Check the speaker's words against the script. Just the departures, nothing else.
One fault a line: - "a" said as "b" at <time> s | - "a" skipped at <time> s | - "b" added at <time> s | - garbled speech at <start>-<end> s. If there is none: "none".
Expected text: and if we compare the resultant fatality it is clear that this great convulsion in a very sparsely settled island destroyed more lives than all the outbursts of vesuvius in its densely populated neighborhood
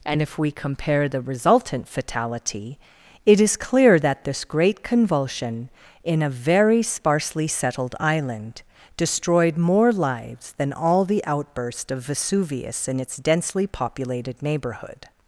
- "outbursts" said as "outburst" at 11.2 s